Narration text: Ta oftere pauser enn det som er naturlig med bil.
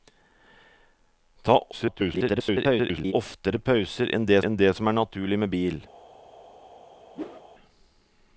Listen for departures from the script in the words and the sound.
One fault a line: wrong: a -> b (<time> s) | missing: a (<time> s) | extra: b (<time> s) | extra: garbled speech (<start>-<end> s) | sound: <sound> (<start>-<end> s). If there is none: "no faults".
extra: garbled speech (1.7-3.1 s)
extra: enn det (4.5 s)
sound: whoosh (7.1-7.4 s)